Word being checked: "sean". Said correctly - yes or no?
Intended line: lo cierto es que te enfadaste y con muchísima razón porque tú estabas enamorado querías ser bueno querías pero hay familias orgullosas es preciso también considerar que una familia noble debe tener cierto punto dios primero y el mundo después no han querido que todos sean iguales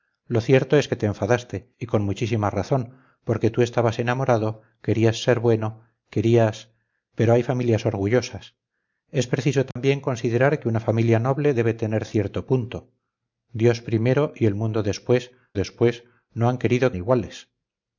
no